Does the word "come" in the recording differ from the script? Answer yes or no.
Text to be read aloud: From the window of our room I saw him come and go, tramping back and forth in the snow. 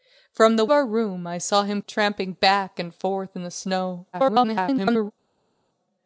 yes